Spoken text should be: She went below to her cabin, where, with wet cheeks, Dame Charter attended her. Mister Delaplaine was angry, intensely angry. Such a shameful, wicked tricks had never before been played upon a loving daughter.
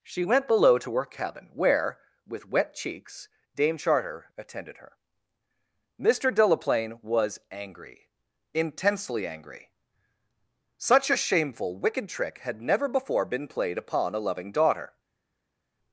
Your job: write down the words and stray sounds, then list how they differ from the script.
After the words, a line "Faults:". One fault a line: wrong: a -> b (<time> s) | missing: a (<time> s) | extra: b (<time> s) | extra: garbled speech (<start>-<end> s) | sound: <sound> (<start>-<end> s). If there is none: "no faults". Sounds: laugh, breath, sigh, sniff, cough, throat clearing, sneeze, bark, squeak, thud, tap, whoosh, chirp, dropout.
She went below to her cabin, where, with wet cheeks, Dame Charter attended her. Mister Delaplaine was angry, intensely angry. Such a shameful, wicked trick had never before been played upon a loving daughter.
Faults:
wrong: tricks -> trick (12.1 s)